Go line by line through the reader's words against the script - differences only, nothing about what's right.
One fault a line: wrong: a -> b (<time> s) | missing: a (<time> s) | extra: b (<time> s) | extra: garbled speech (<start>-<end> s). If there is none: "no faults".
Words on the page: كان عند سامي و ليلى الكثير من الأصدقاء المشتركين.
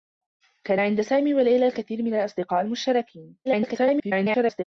extra: garbled speech (3.4-4.6 s)